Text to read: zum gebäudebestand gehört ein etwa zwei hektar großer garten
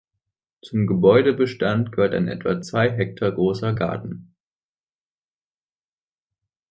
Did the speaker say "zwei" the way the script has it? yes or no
yes